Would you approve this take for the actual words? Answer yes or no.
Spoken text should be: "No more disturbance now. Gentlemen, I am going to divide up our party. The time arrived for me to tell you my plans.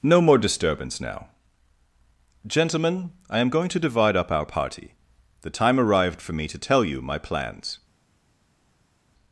yes